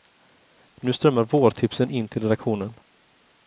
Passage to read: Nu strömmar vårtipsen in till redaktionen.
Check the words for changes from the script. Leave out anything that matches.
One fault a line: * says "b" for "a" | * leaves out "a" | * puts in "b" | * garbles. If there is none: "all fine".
all fine